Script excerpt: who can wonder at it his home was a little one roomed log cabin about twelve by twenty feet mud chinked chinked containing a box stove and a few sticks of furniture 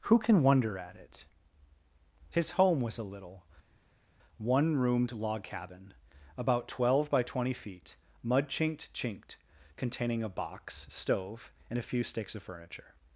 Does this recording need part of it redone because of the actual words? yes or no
no